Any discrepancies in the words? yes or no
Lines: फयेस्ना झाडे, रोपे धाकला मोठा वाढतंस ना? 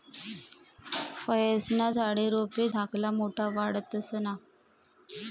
no